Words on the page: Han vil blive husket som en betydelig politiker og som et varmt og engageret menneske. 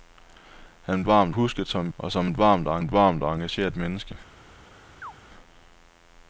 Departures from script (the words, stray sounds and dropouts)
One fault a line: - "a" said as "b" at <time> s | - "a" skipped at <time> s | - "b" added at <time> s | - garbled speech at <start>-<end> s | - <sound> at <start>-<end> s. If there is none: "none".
- "blive" said as "varmt" at 1.0 s
- "betydelig politiker" said as "og som et varmt" at 2.0 s
- "som" skipped at 2.8 s
- chirp at 5.0-5.1 s